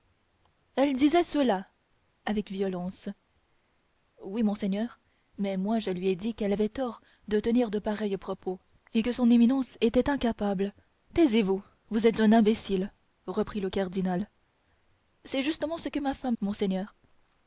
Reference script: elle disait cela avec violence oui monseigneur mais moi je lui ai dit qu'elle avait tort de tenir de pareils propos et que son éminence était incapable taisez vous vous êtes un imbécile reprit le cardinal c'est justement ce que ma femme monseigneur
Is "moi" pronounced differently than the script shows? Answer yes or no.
no